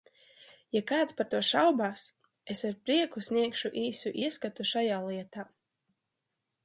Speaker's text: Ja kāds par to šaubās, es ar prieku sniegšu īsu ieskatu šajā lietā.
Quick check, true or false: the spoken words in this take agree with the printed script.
true